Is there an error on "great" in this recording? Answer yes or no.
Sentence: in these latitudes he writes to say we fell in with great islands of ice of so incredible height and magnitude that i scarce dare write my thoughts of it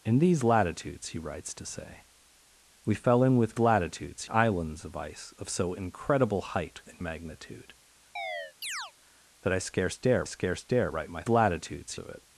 yes